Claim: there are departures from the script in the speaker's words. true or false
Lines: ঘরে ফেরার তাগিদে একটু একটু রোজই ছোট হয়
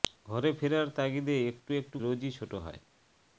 false